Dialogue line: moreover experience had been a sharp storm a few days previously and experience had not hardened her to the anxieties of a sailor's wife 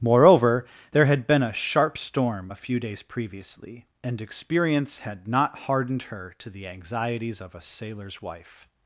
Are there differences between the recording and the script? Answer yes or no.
yes